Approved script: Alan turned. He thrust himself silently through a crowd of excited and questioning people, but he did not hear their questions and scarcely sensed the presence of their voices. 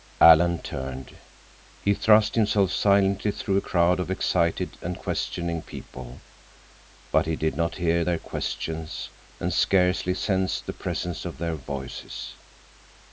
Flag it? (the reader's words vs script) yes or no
no